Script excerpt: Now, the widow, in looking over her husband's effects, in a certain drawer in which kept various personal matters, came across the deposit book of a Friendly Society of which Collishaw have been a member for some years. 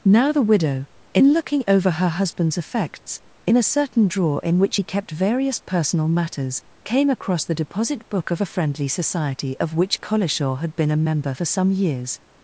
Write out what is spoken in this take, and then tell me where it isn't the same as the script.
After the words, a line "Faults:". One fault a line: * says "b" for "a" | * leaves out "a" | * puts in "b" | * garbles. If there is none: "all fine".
Now, the widow, in looking over her husband's effects, in a certain drawer in which he kept various personal matters, came across the deposit book of a Friendly Society of which Collishaw had been a member for some years.
Faults:
* puts in "he"
* says "had" for "have"